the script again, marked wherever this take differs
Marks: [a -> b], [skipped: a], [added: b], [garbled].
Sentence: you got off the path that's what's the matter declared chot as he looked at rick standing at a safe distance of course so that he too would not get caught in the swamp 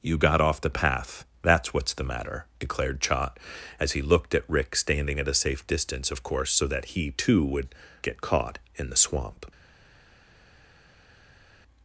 you got off the path that's what's the matter declared chot as he looked at rick standing at a safe distance of course so that he too would [skipped: not] get caught in the swamp